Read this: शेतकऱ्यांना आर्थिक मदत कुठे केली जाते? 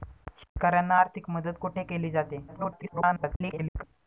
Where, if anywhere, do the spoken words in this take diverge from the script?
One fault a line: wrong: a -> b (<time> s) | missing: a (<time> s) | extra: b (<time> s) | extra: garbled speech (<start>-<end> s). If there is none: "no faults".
extra: garbled speech (2.5-3.8 s)